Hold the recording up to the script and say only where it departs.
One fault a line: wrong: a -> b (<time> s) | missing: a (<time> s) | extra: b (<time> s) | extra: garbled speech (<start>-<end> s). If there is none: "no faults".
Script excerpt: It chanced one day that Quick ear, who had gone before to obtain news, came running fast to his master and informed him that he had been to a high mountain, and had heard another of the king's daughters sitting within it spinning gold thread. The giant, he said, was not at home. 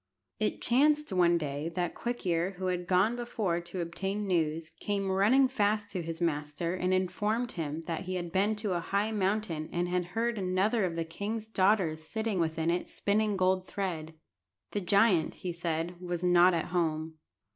no faults